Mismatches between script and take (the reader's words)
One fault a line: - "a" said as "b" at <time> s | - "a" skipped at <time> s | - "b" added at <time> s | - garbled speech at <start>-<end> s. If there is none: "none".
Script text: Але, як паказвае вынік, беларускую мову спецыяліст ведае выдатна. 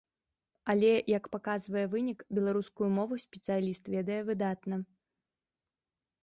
none